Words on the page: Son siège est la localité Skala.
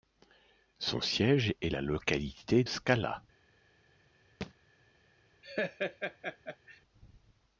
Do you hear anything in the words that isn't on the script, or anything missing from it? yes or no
no